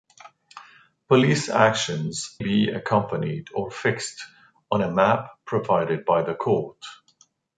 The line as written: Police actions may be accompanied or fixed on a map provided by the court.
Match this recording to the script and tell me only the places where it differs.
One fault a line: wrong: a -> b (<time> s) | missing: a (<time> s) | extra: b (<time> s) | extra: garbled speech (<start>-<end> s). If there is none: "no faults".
missing: may (2.4 s)